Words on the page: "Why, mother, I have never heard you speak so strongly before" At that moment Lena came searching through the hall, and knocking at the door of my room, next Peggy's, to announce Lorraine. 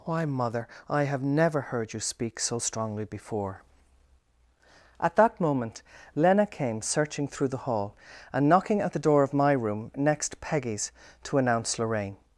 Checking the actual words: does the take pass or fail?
pass